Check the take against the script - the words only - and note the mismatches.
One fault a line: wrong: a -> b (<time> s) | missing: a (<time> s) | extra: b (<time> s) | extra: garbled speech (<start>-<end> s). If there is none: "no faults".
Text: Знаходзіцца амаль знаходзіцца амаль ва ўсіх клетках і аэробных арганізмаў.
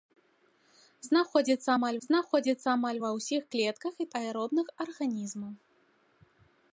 no faults